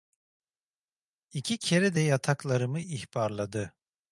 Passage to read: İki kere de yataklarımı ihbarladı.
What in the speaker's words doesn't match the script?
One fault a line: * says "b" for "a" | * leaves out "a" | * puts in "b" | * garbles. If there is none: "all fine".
all fine